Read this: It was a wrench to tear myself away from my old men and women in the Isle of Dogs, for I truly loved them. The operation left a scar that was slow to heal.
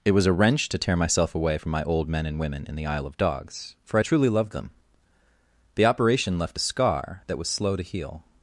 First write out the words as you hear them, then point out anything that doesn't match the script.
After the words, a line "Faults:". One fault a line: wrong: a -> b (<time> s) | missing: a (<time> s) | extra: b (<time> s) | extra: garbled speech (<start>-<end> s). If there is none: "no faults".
It was a wrench to tear myself away from my old men and women in the Isle of Dogs, for I truly loved them. The operation left a scar that was slow to heal.
Faults:
no faults